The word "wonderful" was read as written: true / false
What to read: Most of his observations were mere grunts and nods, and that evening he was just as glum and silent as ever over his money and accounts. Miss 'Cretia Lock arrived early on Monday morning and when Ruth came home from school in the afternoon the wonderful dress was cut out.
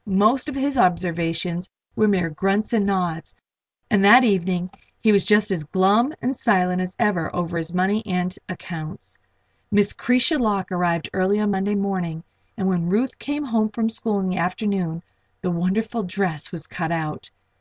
true